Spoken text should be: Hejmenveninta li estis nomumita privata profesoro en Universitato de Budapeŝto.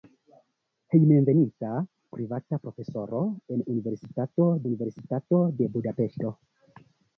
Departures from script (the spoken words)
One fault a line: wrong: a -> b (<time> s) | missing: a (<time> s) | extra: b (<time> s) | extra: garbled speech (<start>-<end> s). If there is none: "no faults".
missing: li estis nomumita (1.7 s)
extra: Universitato (4.7 s)